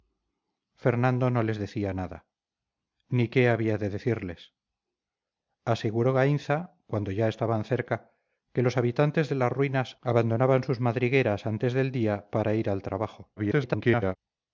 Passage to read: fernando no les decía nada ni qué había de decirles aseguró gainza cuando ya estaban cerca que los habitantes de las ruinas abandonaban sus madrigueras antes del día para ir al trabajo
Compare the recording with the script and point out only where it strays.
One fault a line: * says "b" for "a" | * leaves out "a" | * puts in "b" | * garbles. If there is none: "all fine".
* garbles